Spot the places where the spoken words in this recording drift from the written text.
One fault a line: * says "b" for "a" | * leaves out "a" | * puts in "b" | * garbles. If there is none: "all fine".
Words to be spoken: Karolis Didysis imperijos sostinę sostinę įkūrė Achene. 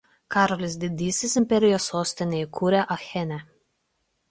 * leaves out "sostinę"